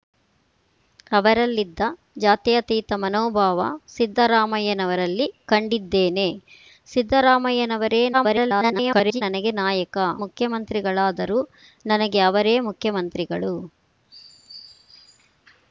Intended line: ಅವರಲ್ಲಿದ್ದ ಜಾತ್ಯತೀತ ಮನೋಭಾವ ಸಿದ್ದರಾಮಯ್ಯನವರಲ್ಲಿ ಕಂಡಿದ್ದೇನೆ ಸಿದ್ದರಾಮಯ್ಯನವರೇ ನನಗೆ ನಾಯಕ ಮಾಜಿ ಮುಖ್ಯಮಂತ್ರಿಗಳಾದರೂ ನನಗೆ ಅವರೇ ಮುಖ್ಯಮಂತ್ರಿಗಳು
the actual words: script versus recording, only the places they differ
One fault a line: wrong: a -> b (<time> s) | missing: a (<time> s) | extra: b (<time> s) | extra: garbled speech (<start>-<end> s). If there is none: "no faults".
extra: garbled speech (8.1-9.2 s)
missing: ಮಾಜಿ (10.0 s)